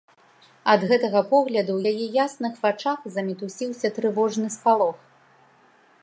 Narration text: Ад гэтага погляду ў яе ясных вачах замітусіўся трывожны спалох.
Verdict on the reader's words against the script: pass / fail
pass